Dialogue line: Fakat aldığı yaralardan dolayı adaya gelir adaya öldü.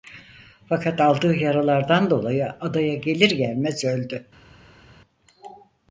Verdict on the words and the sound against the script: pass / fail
fail